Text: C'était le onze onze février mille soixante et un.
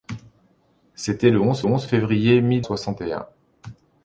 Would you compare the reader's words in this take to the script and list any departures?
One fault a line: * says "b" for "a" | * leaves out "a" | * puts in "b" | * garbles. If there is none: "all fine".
all fine